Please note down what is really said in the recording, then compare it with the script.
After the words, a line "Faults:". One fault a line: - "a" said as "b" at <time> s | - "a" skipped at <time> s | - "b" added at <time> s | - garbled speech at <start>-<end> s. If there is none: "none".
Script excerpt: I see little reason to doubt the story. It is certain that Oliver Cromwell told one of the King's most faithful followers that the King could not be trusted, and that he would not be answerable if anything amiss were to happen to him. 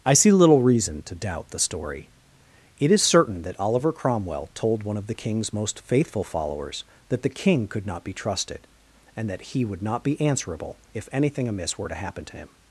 I see little reason to doubt the story. It is certain that Oliver Cromwell told one of the King's most faithful followers that the King could not be trusted, and that he would not be answerable if anything amiss were to happen to him.
Faults:
none